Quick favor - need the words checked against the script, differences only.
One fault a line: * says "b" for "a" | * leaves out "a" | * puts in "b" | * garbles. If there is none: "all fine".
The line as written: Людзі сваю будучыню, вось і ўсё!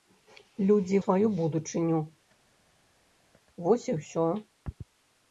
all fine